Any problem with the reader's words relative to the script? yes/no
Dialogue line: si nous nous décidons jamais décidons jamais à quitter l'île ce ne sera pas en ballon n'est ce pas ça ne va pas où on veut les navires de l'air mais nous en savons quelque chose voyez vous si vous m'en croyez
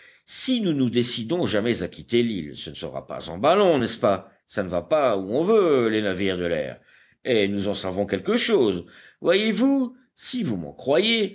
yes